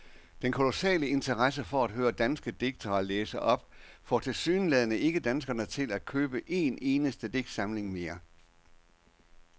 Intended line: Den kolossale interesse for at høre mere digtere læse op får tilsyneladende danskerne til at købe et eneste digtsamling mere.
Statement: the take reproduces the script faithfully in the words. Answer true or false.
false